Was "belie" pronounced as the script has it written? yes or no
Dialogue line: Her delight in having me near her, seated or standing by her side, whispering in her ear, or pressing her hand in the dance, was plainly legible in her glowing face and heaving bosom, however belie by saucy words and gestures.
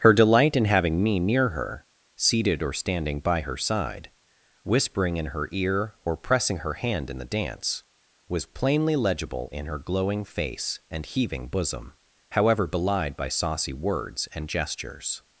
no